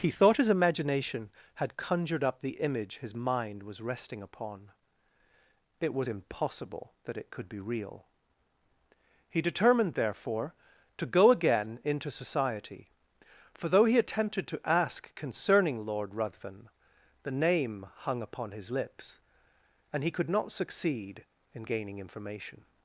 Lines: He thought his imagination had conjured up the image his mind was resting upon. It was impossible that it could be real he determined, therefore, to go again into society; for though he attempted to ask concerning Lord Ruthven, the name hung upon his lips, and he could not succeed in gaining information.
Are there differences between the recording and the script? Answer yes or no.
no